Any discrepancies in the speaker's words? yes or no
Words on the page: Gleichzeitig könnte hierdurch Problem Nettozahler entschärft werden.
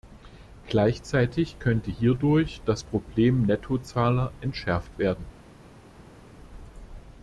yes